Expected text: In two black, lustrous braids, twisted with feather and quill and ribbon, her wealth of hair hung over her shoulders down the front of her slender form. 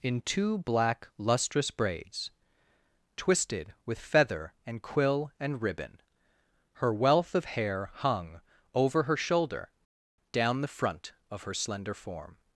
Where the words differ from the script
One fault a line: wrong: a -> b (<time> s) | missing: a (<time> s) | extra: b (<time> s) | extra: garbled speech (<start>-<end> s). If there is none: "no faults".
wrong: shoulders -> shoulder (9.2 s)